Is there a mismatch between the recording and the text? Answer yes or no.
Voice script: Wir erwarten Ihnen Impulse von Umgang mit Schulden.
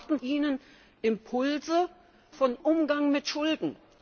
no